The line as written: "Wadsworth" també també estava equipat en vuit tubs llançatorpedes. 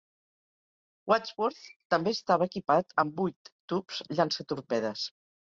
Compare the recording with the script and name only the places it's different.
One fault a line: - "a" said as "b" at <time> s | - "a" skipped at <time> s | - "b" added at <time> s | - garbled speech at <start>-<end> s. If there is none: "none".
- "també" skipped at 2.1 s
- "en" said as "amb" at 3.0 s